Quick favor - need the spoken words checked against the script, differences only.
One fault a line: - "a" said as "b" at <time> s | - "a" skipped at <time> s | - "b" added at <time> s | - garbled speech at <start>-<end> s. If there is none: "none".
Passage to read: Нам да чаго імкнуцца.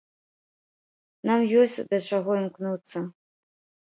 - "ёсць" added at 1.6 s